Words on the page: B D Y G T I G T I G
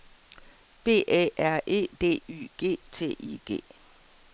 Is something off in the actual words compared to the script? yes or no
yes